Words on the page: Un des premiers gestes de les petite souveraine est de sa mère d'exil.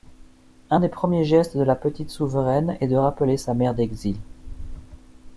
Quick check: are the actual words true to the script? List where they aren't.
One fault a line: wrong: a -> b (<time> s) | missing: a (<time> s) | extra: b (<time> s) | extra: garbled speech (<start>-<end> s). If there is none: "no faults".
wrong: les -> la (1.6 s)
extra: rappeler (3.0 s)